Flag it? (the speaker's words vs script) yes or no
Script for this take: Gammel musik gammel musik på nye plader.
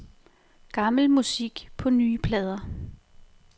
yes